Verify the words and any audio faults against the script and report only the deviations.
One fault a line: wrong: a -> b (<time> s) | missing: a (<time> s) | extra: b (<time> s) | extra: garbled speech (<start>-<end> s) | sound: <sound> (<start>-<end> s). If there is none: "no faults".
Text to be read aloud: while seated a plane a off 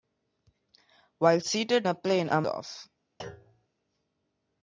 sound: thud (3.2-3.7 s)